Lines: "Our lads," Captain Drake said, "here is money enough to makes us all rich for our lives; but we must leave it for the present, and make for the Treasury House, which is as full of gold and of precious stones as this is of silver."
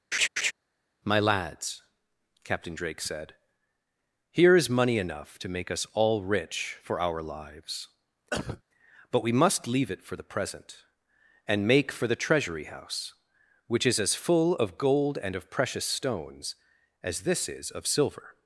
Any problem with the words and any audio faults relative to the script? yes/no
yes